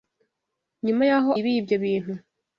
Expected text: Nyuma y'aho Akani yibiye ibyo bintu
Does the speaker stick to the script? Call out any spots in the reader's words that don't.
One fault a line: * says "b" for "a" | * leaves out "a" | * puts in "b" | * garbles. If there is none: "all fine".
* leaves out "Akani"